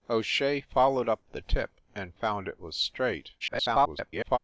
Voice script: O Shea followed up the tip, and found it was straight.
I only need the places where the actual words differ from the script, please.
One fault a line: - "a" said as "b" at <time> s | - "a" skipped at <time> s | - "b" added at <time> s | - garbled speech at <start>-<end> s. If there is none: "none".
- garbled speech at 3.4-4.4 s